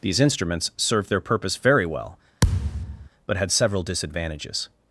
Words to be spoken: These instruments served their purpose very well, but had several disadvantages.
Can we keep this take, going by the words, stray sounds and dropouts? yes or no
no